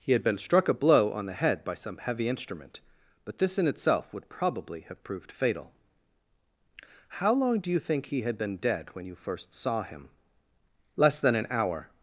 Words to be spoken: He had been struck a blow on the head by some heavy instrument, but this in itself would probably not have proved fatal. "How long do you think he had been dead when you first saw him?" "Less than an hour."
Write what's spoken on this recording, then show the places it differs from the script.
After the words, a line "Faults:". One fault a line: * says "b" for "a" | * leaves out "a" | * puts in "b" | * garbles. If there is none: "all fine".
He had been struck a blow on the head by some heavy instrument, but this in itself would probably have proved fatal. "How long do you think he had been dead when you first saw him?" "Less than an hour."
Faults:
* leaves out "not"